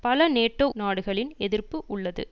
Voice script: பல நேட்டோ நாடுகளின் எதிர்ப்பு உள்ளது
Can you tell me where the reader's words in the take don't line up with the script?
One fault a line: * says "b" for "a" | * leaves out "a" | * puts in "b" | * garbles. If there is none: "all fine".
all fine